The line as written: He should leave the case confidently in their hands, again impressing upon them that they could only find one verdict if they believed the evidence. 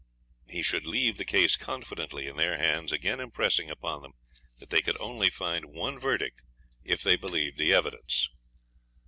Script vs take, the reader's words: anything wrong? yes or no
no